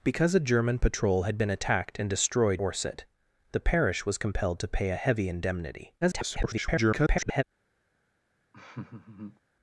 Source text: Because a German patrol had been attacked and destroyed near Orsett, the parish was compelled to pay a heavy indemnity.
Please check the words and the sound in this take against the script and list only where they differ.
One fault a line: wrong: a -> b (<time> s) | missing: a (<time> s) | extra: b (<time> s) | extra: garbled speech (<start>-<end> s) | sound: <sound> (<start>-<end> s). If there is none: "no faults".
missing: near (2.6 s)
extra: garbled speech (6.0-7.4 s)
sound: laugh (8.5-9.4 s)